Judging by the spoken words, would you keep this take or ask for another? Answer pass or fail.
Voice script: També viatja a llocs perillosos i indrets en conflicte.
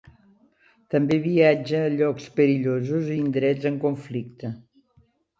pass